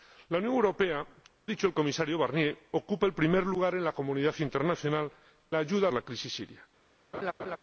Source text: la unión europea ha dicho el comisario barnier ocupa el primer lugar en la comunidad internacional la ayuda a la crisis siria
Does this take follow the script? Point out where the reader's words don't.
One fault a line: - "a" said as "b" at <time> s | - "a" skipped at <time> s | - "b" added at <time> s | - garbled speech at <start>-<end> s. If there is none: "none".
none